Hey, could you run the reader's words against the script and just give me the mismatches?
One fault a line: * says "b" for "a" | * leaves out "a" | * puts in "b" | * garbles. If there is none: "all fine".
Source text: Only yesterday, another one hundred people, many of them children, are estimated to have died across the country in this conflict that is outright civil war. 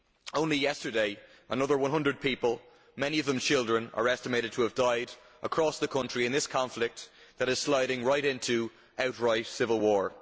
* puts in "sliding right into"